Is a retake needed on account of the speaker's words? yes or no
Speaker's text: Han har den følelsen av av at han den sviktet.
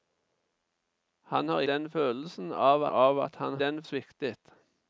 no